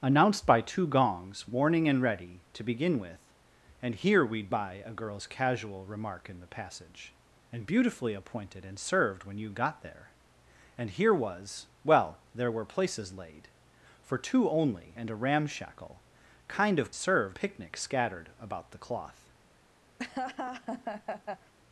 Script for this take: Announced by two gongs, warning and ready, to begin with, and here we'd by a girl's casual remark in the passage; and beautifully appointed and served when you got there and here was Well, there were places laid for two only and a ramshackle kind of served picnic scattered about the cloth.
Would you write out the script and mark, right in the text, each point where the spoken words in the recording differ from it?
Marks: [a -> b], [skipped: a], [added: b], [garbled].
Announced by two gongs, warning and ready, to begin with, and here we'd by a girl's casual remark in the passage; and beautifully appointed and served when you got there and here was Well, there were places laid for two only and a ramshackle kind of served picnic scattered about the cloth.